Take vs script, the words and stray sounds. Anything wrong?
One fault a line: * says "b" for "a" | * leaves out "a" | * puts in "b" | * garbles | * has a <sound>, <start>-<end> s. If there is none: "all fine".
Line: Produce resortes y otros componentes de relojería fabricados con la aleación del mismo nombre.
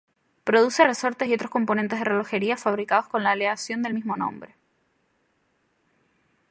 all fine